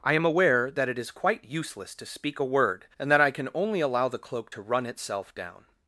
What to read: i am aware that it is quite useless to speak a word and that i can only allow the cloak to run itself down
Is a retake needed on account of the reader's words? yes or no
no